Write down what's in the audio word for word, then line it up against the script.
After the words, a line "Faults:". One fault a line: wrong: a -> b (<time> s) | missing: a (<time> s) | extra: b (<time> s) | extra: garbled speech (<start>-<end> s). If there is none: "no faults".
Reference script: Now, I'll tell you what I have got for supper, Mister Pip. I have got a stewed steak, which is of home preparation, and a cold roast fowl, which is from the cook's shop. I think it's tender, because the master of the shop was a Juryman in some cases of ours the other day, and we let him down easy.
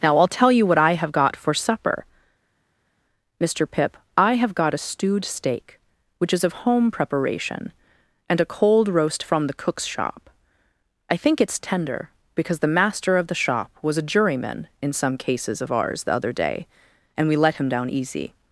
Now, I'll tell you what I have got for supper, Mister Pip. I have got a stewed steak, which is of home preparation, and a cold roast from the cook's shop. I think it's tender, because the master of the shop was a Juryman in some cases of ours the other day, and we let him down easy.
Faults:
missing: fowl which is (9.2 s)